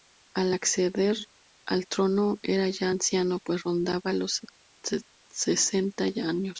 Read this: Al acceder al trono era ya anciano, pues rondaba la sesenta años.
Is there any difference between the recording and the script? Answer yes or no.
yes